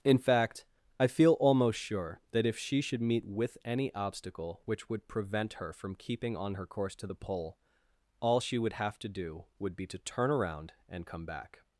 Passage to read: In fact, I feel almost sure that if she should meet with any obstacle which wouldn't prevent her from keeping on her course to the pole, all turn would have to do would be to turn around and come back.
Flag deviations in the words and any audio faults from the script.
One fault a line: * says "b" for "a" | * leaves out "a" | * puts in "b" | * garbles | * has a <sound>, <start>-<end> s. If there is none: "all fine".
* says "would" for "wouldn't"
* says "she" for "turn"